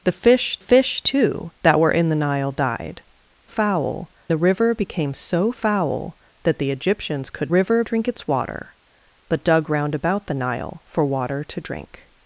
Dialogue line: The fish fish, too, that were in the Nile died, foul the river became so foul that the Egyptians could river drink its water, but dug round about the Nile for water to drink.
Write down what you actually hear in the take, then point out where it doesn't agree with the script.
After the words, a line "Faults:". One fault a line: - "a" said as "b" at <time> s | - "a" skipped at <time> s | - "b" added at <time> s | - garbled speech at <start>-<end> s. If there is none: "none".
The fish fish, too, that were in the Nile died, foul the river became so foul that the Egyptians could river drink its water, but dug round about the Nile for water to drink.
Faults:
none